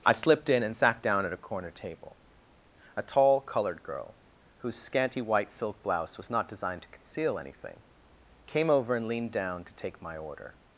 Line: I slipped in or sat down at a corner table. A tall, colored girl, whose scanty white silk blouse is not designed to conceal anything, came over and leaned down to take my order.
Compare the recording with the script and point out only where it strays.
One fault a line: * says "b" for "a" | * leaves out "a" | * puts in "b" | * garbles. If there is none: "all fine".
* says "and" for "or"
* says "was" for "is"